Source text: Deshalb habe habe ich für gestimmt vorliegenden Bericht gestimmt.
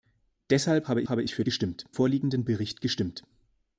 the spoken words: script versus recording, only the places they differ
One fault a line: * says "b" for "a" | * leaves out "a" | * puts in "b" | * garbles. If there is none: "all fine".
all fine